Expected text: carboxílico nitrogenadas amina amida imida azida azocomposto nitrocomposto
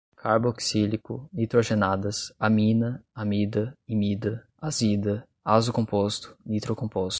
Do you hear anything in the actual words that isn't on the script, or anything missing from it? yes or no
no